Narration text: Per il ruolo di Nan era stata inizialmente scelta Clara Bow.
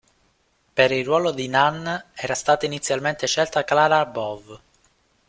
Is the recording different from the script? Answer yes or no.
no